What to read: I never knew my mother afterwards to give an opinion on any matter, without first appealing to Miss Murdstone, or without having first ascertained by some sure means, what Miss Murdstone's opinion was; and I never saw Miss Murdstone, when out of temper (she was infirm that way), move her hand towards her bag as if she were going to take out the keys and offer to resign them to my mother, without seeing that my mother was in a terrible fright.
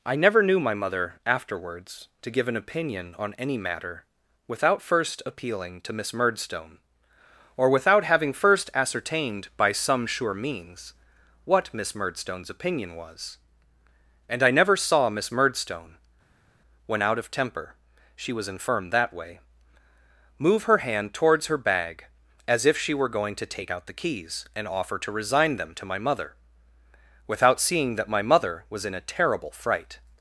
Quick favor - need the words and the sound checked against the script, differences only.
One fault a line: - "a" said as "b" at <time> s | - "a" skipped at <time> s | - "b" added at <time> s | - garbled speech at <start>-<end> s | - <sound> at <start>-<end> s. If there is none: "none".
none